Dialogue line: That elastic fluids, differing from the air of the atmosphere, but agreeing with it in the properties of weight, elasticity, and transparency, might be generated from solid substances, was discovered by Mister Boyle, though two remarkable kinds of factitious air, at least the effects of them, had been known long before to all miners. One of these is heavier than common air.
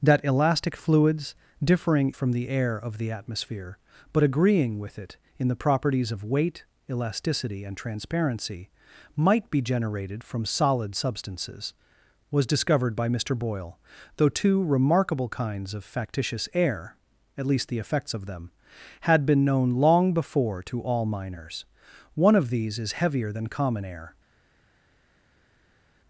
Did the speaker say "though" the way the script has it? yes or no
yes